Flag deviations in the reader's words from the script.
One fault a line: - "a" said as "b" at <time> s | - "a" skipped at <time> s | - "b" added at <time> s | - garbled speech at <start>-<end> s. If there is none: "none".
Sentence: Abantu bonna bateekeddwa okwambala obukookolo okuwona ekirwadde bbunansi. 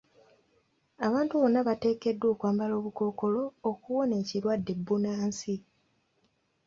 none